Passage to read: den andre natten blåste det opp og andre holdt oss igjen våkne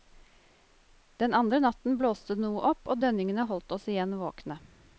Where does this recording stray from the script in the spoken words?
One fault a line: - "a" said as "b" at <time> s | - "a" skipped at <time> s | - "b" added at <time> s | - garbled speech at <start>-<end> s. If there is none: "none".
- "noe" added at 2.5 s
- "andre" said as "dønningene" at 3.0 s